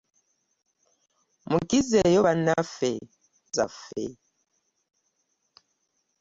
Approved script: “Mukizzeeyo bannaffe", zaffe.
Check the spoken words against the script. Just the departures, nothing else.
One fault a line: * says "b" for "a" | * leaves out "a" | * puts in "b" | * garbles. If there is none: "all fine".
all fine